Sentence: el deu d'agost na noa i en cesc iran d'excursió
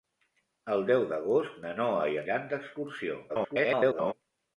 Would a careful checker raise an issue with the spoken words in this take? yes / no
yes